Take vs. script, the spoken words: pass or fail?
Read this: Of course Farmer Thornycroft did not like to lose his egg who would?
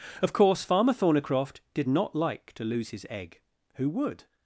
pass